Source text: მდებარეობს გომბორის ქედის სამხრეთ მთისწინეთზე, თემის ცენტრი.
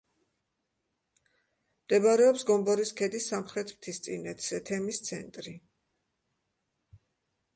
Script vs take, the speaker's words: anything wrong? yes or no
no